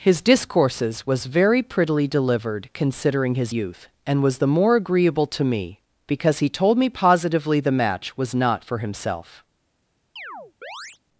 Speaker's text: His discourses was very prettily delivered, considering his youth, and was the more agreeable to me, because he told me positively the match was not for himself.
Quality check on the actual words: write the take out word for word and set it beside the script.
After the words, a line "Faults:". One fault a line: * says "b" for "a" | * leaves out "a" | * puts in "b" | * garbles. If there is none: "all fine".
His discourses was very prettily delivered, considering his youth, and was the more agreeable to me, because he told me positively the match was not for himself.
Faults:
all fine